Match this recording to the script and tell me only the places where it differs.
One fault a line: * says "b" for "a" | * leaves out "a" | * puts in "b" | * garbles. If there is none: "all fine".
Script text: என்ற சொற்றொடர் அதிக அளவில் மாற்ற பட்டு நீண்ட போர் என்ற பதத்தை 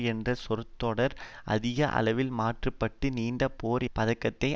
* leaves out "என்ற"